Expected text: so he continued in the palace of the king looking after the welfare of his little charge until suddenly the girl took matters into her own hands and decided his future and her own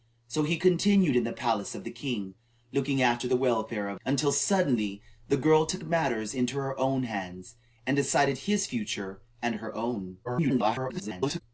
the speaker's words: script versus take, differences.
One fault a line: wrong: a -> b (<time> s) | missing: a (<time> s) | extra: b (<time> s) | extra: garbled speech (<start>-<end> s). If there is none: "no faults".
missing: his little charge (4.0 s)
extra: garbled speech (10.2-11.4 s)